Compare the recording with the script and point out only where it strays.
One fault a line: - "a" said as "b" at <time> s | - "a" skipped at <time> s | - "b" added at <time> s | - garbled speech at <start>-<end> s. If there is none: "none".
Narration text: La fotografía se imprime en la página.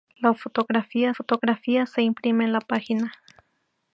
- "fotografía" added at 1.1 s